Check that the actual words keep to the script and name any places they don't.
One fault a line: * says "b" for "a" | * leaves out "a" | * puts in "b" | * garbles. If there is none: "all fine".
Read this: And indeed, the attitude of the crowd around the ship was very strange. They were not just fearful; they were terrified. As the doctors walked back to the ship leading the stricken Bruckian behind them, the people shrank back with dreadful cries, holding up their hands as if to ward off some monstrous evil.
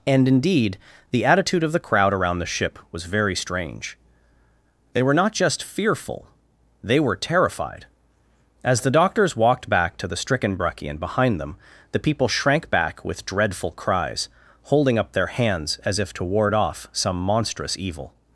* leaves out "ship leading the"